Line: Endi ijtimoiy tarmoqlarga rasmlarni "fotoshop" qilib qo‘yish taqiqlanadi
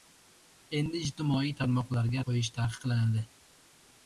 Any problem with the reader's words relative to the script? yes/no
yes